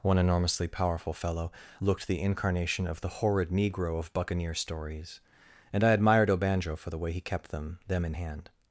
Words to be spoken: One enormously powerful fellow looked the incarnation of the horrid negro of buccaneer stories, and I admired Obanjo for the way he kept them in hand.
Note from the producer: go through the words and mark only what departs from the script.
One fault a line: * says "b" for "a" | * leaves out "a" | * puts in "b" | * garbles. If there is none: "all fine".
* puts in "them"